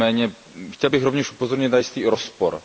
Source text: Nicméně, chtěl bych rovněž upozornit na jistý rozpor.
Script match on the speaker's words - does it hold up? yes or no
yes